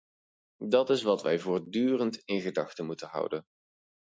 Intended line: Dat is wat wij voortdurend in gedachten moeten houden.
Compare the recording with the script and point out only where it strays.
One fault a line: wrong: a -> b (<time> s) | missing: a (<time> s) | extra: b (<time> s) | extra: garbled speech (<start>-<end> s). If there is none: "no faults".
no faults